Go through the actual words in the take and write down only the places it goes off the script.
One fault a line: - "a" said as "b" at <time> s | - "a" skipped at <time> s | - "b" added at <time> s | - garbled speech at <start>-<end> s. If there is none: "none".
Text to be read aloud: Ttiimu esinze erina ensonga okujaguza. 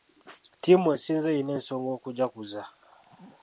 none